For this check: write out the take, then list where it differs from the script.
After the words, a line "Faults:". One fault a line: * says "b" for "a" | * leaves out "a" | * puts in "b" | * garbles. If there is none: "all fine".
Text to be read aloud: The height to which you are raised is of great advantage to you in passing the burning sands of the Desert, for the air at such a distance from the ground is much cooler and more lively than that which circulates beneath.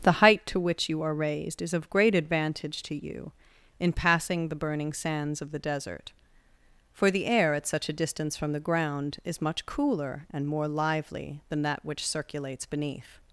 The height to which you are raised is of great advantage to you in passing the burning sands of the Desert, for the air at such a distance from the ground is much cooler and more lively than that which circulates beneath.
Faults:
all fine